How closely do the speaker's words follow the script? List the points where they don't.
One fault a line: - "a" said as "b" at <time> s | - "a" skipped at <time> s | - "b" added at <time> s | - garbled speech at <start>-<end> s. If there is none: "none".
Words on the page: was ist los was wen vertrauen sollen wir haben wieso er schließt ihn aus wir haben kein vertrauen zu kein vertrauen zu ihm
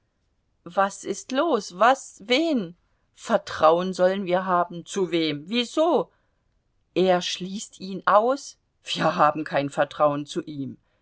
- "zu wem" added at 4.8 s
- "kein vertrauen zu" skipped at 10.4 s